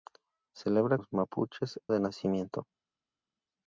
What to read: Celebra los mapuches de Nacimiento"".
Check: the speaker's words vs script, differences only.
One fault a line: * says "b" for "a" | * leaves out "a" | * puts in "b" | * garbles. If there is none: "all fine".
all fine